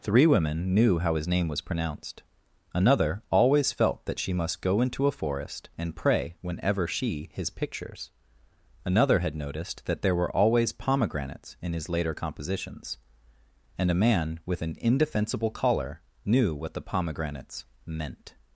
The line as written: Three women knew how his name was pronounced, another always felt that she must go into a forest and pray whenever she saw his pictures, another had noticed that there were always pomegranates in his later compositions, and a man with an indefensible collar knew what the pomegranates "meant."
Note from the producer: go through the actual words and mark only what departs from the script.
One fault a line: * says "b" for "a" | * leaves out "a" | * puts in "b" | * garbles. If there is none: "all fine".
* leaves out "saw"